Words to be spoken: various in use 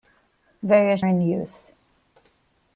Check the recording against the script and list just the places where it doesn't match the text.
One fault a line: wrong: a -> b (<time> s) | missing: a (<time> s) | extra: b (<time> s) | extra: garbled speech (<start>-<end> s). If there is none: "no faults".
no faults